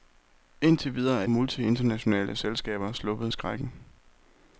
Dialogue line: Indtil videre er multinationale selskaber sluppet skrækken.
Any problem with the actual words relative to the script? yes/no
no